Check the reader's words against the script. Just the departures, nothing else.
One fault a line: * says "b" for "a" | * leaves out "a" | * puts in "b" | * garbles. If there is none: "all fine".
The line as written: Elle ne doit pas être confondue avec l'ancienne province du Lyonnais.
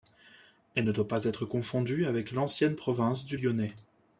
all fine